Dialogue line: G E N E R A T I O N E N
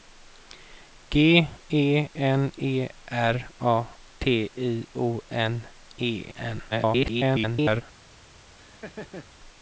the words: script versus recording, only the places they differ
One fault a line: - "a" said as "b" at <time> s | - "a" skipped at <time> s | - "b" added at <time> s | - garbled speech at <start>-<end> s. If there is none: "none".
- garbled speech at 6.7-7.8 s